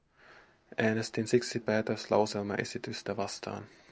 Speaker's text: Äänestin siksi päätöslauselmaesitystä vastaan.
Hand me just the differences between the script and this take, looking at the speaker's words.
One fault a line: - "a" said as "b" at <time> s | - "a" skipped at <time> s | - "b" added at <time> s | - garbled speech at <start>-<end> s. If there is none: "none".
none